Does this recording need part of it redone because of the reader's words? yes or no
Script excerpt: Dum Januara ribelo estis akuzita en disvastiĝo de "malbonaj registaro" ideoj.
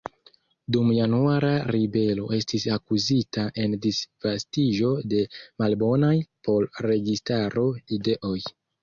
yes